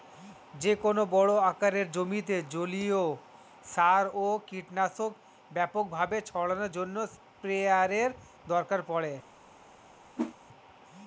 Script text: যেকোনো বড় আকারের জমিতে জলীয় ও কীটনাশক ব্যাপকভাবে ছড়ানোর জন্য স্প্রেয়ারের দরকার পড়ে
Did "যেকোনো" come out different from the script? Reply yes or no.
no